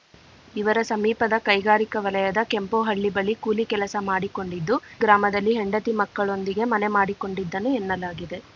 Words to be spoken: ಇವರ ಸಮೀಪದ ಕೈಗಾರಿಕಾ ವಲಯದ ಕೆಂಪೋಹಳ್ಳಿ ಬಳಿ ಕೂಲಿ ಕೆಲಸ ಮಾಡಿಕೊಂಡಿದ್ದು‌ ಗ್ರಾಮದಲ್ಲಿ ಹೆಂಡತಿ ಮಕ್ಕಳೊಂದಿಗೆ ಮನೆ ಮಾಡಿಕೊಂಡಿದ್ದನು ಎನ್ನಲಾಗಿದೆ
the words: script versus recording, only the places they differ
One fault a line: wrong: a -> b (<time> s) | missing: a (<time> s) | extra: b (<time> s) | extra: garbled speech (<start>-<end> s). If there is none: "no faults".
no faults